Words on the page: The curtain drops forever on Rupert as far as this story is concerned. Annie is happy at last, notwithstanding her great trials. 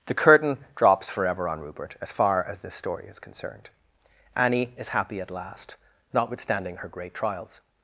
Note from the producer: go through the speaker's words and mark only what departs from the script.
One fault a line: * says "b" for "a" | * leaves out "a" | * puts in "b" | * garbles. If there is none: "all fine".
all fine